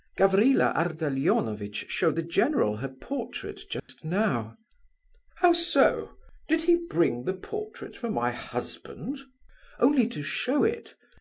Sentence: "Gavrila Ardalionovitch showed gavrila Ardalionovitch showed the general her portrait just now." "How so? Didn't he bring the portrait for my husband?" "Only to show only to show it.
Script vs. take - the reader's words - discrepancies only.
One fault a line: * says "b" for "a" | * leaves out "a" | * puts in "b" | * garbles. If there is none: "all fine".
* leaves out "gavrila Ardalionovitch showed"
* says "Did" for "Didn't"
* leaves out "only to show"